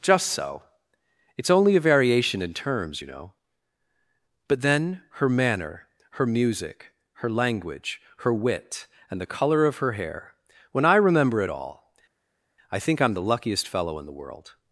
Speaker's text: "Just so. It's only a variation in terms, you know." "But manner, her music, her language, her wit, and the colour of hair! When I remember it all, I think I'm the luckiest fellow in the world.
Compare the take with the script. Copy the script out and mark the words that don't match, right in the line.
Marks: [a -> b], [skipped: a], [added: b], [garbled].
"Just so. It's only a variation in terms, you know." "But [added: then her] manner, her music, her language, her wit, and the colour of [added: her] hair! When I remember it all, I think I'm the luckiest fellow in the world.